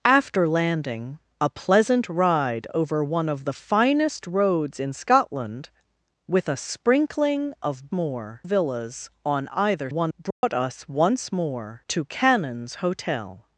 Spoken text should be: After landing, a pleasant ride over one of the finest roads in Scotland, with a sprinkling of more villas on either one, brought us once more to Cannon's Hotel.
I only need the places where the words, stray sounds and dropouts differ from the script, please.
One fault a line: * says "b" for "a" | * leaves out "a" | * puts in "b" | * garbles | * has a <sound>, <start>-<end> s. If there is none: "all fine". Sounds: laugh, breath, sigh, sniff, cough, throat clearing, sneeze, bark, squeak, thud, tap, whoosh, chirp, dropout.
* has a dropout, 10.3-10.4 s